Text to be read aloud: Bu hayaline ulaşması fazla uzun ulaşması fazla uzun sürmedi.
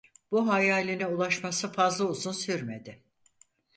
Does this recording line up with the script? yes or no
no